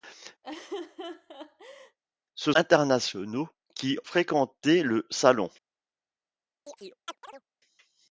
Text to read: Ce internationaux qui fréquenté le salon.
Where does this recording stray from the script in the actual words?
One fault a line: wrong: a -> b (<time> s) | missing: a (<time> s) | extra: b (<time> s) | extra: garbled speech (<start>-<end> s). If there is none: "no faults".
no faults